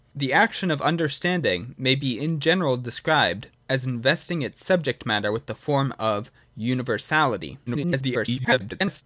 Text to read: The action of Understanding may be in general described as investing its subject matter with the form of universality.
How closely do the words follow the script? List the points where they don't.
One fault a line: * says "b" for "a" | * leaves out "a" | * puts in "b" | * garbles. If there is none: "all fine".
* garbles